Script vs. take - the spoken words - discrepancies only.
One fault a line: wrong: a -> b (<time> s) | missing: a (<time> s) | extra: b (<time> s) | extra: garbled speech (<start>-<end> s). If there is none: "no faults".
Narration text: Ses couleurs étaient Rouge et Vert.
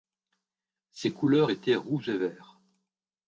no faults